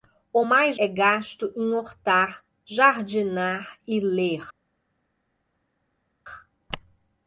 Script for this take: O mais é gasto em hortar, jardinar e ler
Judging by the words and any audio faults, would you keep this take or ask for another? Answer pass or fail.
pass